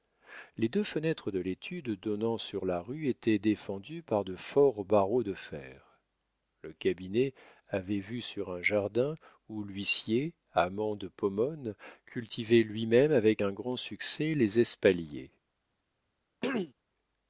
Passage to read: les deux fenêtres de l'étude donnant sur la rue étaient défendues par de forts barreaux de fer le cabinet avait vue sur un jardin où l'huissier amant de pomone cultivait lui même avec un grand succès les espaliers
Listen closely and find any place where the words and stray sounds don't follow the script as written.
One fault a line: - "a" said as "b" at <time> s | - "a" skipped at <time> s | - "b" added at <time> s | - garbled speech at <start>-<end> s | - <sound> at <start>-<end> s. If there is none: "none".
- throat clearing at 16.4-16.7 s